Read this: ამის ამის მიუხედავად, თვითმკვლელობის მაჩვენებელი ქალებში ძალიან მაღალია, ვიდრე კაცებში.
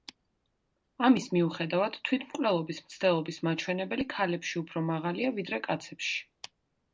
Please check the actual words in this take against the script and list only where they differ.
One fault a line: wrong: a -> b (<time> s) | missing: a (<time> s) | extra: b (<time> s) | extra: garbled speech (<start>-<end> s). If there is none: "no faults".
missing: ამის (1.3 s)
extra: მცდელობის (2.9 s)
wrong: ძალიან -> უფრო (4.6 s)